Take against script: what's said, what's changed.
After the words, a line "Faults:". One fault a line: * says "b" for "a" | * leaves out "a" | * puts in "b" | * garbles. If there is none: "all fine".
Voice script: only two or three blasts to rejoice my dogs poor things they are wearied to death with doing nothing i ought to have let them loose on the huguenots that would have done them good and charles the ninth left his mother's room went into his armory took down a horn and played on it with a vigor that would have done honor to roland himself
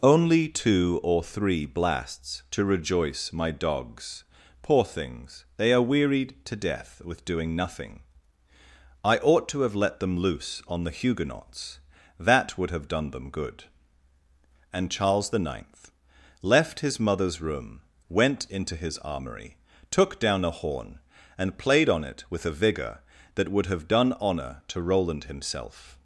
only two or three blasts to rejoice my dogs poor things they are wearied to death with doing nothing i ought to have let them loose on the huguenots that would have done them good and charles the ninth left his mother's room went into his armory took down a horn and played on it with a vigor that would have done honor to roland himself
Faults:
all fine